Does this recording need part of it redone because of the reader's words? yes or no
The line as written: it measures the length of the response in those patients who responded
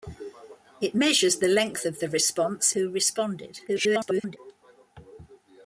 yes